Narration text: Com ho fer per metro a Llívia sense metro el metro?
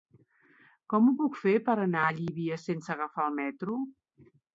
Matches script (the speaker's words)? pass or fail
fail